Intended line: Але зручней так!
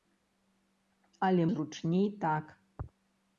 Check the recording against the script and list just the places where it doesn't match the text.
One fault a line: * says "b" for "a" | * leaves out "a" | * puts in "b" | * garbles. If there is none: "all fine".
all fine